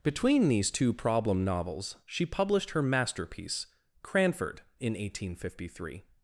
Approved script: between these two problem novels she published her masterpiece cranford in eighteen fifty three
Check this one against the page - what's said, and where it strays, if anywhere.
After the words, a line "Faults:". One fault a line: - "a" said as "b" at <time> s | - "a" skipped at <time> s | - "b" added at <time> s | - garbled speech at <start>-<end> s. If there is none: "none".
between these two problem novels she published her masterpiece cranford in eighteen fifty three
Faults:
none